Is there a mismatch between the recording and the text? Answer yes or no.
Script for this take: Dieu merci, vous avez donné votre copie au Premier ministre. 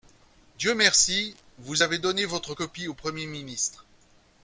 no